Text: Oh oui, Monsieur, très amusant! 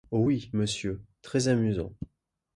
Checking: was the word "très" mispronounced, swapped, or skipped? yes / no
no